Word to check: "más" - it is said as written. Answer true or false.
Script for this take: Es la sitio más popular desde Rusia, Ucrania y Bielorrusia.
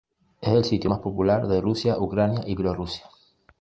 true